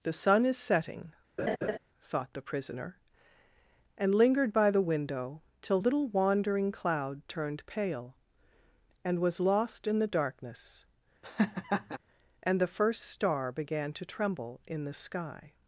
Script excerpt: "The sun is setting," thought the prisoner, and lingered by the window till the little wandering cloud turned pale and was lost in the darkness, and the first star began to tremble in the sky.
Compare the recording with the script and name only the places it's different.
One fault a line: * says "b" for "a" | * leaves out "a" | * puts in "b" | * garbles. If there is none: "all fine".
* leaves out "the"